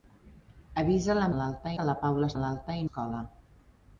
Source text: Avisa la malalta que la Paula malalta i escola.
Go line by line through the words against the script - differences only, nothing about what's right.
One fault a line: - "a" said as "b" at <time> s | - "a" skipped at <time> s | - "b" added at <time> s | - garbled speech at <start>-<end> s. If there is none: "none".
none